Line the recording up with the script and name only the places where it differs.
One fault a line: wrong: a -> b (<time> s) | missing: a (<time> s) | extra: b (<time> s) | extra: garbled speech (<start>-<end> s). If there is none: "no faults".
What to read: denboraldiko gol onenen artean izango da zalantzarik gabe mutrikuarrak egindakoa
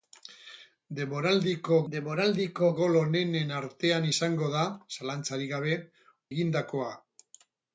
extra: denboraldiko (1.9 s)
missing: mutrikuarrak (5.8 s)